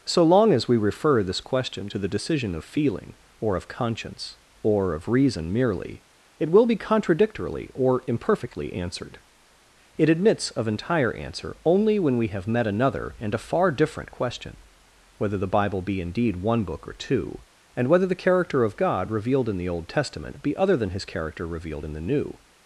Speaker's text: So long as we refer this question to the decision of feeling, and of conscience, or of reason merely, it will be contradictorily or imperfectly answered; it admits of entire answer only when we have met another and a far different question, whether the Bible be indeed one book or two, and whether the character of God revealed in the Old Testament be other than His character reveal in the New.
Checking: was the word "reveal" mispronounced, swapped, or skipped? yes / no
yes